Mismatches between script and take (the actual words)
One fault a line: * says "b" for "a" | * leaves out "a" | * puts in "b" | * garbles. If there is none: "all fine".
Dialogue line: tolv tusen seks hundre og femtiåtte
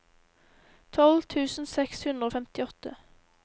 all fine